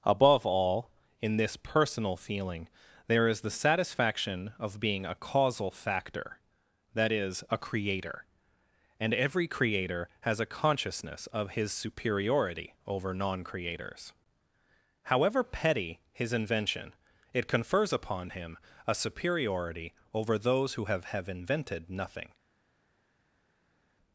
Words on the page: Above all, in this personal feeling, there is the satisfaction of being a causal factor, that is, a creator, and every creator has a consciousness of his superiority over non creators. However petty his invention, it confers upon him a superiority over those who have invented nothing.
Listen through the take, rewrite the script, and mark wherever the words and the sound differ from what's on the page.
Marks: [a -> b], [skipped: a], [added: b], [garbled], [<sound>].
Above all, in this personal feeling, there is the satisfaction of being a causal factor, that is, a creator, and every creator has a consciousness of his superiority over non creators. However petty his invention, it confers upon him a superiority over those who have [added: have] invented nothing.